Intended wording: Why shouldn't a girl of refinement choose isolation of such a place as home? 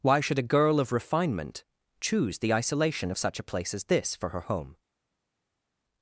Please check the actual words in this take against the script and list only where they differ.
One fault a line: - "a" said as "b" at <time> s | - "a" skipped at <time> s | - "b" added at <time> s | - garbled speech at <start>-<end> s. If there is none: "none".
- "shouldn't" said as "should" at 0.2 s
- "the" added at 2.4 s
- "this for her" added at 3.8 s